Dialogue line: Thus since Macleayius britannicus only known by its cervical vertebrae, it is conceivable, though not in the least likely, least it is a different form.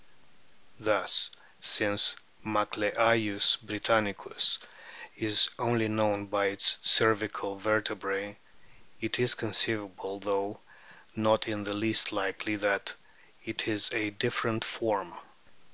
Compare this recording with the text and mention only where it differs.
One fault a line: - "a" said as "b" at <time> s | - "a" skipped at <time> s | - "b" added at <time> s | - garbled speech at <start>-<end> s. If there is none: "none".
- "is" added at 5.1 s
- "least" said as "that" at 12.6 s